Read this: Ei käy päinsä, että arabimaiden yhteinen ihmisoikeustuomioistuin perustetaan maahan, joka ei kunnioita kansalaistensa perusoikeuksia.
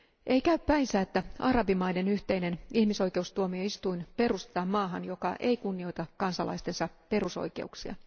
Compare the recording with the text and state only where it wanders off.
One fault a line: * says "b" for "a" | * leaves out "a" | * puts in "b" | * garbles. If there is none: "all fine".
all fine